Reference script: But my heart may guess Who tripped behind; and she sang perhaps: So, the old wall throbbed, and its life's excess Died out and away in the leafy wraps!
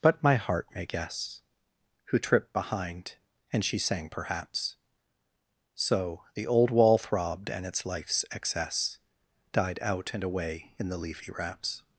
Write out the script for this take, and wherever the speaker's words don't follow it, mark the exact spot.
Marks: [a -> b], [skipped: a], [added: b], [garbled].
But my heart may guess Who tripped behind; and she sang perhaps: So, the old wall throbbed, and its life's excess Died out and away in the leafy wraps!